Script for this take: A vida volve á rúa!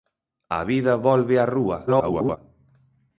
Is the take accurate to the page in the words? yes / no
no